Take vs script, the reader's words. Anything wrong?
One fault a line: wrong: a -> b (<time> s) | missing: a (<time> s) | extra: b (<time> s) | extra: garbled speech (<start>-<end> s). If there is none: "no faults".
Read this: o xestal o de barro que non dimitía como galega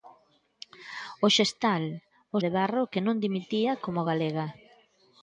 no faults